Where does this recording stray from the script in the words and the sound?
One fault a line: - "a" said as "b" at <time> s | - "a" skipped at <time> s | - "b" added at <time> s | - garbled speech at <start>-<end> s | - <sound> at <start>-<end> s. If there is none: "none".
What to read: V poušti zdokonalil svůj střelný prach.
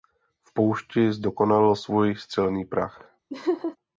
- laugh at 3.3-3.8 s